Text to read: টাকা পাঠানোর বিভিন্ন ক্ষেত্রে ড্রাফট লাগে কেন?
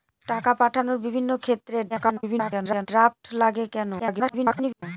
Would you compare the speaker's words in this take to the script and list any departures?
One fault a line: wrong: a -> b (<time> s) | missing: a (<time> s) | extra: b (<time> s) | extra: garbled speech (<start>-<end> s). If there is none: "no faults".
extra: garbled speech (1.9-2.9 s)
extra: garbled speech (4.0-4.8 s)